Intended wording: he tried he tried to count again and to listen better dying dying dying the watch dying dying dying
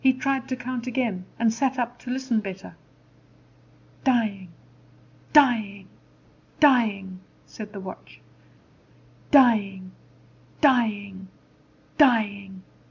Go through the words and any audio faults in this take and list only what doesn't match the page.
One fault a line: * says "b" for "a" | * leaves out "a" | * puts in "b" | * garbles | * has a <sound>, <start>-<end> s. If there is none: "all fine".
* leaves out "he tried"
* puts in "sat up"
* puts in "said"